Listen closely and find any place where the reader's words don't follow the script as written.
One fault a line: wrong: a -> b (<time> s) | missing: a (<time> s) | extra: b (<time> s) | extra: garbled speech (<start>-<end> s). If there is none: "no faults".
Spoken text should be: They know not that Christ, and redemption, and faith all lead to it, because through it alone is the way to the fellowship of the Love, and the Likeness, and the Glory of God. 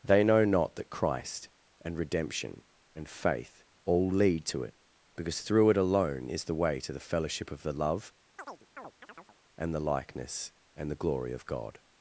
no faults